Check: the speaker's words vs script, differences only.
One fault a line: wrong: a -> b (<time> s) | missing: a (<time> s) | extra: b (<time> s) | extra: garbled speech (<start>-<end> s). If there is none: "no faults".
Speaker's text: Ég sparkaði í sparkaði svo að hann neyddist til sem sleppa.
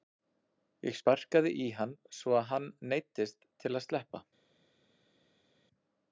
wrong: sparkaði -> hann (1.8 s)
wrong: sem -> að (3.8 s)